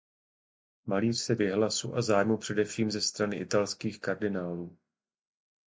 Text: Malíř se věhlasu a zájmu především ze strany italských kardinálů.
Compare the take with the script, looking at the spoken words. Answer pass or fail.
pass